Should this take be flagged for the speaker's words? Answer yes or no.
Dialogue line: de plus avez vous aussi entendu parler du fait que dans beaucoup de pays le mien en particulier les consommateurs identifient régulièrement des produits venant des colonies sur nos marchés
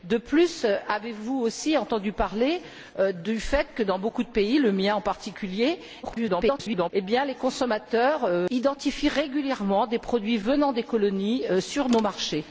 yes